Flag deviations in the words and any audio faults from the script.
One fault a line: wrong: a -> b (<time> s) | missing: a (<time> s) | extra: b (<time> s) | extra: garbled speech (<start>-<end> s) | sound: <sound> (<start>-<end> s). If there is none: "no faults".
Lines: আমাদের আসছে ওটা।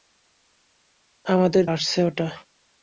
no faults